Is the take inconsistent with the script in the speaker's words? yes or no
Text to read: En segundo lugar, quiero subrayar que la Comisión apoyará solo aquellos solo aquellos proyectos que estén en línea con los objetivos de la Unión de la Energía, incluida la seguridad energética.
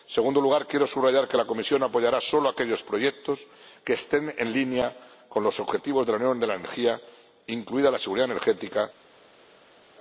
yes